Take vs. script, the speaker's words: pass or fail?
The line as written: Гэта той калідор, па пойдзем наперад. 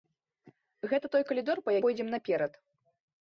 pass